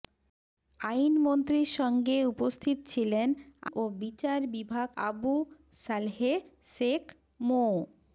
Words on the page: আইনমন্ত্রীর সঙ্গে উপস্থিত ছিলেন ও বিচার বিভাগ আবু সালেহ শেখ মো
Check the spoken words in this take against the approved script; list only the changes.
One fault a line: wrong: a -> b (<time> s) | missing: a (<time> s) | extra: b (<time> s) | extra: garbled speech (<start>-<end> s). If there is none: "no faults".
no faults